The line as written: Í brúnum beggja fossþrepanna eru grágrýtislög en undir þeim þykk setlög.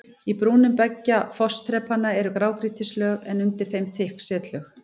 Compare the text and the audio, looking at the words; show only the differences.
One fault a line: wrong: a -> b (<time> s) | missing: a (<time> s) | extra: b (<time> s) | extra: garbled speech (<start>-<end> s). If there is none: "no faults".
no faults